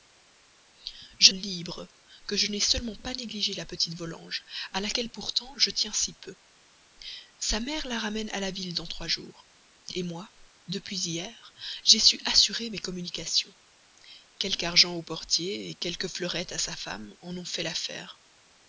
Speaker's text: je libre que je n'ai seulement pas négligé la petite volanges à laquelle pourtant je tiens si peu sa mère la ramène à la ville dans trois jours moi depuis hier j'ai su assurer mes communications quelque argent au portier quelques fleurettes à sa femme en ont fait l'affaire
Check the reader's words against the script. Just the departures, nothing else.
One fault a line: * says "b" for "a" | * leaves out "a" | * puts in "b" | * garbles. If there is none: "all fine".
all fine